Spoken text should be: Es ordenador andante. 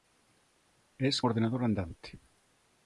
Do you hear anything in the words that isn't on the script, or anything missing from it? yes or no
no